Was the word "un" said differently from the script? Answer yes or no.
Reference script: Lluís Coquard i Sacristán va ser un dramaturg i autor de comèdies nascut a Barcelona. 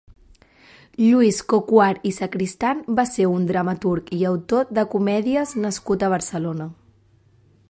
no